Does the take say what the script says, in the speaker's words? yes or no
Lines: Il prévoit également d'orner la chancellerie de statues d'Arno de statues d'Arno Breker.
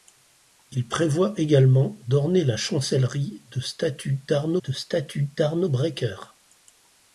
yes